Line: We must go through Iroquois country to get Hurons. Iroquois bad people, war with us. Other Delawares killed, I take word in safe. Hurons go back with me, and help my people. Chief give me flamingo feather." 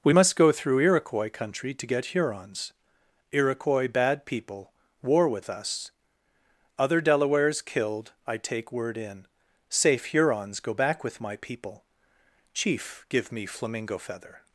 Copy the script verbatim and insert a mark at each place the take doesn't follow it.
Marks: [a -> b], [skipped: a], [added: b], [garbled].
We must go through Iroquois country to get Hurons. Iroquois bad people, war with us. Other Delawares killed, I take word in safe. Hurons go back with [skipped: me, and help] my people. Chief give me flamingo feather."